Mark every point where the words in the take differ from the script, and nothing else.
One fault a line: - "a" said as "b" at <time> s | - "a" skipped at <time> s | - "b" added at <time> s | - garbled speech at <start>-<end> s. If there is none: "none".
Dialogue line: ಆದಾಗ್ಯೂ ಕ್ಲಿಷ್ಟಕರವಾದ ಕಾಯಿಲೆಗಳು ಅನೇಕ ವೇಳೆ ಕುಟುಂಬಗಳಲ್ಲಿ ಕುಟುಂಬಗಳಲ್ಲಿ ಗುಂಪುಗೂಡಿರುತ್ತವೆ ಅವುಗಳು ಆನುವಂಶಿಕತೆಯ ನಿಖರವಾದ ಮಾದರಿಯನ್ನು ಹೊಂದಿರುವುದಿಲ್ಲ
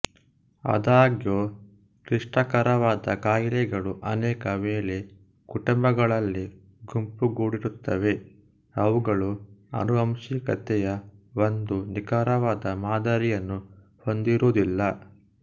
- "ಕುಟುಂಬಗಳಲ್ಲಿ" skipped at 6.4 s
- "ಒಂದು" added at 11.4 s